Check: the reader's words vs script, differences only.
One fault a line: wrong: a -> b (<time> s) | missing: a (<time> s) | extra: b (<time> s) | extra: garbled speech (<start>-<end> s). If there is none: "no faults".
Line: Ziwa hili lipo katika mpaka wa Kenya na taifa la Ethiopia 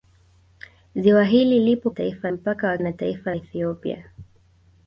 wrong: katika -> taifa (1.9 s)
missing: Kenya (2.8 s)
missing: la (3.3 s)